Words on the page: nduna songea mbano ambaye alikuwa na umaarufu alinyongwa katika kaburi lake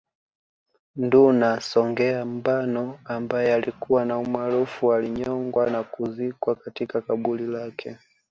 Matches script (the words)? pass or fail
fail